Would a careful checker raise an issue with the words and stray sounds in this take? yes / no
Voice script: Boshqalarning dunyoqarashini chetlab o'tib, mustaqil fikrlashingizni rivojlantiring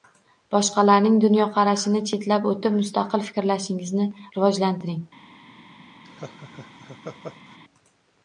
yes